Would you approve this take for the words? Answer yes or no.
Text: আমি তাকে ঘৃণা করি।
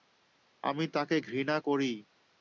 yes